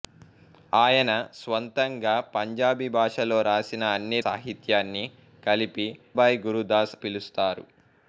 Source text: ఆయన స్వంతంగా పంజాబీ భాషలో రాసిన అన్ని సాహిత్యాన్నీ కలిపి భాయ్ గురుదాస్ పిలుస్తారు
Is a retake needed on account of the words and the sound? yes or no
no